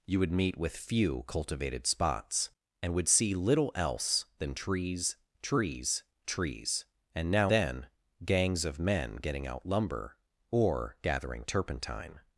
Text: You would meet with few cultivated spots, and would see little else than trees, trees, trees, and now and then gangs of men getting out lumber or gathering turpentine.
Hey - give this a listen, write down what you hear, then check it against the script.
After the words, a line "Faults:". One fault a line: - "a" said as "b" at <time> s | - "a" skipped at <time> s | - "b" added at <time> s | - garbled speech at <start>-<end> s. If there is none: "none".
You would meet with few cultivated spots, and would see little else than trees, trees, trees, and now then gangs of men getting out lumber or gathering turpentine.
Faults:
- "and" skipped at 7.5 s